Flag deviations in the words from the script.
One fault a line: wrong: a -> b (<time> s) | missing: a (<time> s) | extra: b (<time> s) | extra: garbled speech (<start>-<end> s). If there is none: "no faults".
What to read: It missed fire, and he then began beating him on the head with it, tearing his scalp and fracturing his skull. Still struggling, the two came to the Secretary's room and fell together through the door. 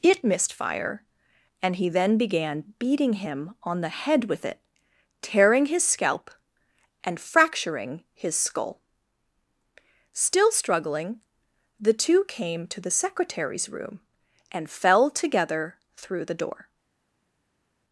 no faults